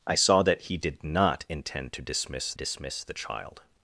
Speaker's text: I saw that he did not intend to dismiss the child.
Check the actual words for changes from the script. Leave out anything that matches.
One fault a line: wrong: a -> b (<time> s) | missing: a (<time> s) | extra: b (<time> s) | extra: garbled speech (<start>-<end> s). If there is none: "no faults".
extra: dismiss (2.5 s)